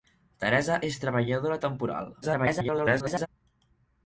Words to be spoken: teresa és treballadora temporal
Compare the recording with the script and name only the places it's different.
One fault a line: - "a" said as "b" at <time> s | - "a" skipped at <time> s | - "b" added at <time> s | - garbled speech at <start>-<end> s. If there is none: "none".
- garbled speech at 2.2-3.3 s